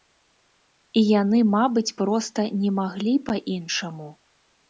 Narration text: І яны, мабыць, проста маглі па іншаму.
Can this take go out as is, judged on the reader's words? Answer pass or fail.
fail